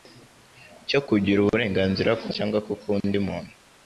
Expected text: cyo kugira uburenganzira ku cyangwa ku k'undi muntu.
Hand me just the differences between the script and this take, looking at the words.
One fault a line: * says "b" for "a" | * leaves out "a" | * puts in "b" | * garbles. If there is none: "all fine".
all fine